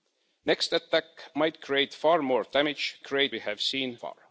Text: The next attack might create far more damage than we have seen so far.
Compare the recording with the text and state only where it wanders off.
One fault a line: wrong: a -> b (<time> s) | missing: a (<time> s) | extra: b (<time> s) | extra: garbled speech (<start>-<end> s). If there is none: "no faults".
wrong: than -> create (3.0 s)
missing: so (4.0 s)